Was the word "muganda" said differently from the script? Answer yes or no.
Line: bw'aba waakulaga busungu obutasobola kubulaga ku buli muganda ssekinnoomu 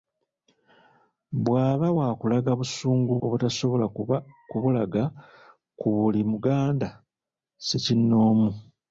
no